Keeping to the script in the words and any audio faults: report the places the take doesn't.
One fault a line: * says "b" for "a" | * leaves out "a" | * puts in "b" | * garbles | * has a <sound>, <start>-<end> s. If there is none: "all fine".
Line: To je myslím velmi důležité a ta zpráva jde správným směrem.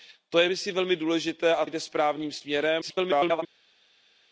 * leaves out "ta zpráva"
* garbles